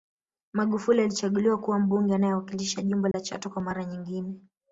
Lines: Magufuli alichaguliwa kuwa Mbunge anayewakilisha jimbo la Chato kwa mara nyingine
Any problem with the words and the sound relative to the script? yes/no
yes